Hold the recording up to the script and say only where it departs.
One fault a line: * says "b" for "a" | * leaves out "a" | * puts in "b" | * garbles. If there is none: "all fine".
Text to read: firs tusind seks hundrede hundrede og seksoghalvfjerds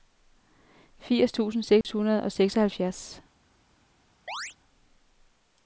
* leaves out "hundrede"